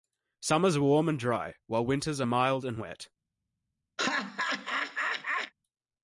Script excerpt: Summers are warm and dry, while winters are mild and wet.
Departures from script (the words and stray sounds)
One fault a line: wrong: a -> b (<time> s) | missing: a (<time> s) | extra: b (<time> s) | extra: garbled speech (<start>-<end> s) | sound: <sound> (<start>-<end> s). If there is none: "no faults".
sound: laugh (4.0-5.5 s)